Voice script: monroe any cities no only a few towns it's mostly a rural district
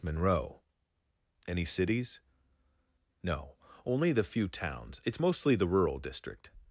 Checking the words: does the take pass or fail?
fail